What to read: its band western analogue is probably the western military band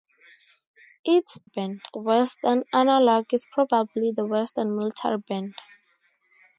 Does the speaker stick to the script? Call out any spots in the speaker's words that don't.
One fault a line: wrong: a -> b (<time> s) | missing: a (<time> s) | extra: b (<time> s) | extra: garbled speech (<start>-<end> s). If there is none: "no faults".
no faults